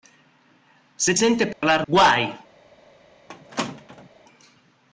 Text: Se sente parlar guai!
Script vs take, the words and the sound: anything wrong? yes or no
yes